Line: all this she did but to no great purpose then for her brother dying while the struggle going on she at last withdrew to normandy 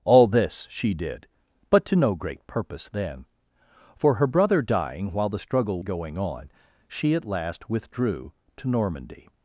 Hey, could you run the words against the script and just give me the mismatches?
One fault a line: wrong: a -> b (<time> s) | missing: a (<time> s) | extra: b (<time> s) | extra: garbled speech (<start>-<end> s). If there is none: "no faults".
no faults